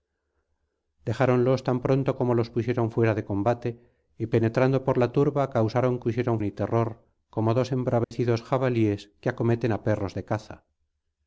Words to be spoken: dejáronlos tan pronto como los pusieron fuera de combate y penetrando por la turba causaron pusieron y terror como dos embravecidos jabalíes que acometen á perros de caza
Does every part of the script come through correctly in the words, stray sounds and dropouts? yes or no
no